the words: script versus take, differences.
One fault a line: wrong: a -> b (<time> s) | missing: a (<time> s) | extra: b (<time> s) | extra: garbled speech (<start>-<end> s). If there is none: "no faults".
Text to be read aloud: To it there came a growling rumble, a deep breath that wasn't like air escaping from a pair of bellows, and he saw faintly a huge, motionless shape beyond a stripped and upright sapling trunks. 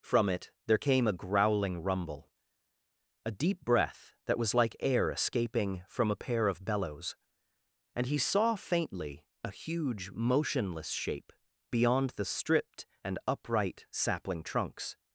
wrong: To -> From (0.0 s)
wrong: wasn't -> was (4.4 s)
wrong: a -> the (12.1 s)